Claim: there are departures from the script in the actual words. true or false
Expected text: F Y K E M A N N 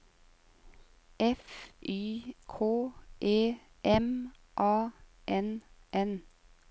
false